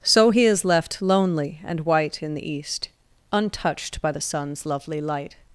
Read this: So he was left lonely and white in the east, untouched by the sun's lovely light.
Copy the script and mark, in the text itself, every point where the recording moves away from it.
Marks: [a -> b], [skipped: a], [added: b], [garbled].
So he [was -> is] left lonely and white in the east, untouched by the sun's lovely light.